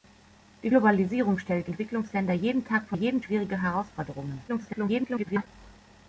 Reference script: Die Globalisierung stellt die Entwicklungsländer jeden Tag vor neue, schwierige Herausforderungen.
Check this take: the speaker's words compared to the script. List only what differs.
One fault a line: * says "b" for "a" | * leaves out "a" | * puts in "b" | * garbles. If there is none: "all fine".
* leaves out "die"
* says "jeden" for "neue"
* garbles